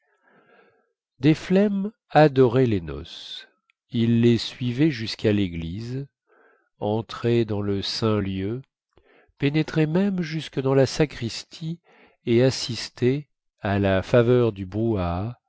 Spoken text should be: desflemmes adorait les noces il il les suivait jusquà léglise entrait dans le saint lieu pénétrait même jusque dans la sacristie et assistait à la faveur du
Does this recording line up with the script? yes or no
no